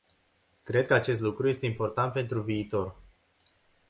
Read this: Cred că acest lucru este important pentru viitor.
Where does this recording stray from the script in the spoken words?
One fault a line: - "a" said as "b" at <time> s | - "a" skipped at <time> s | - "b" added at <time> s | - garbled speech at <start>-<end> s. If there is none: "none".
none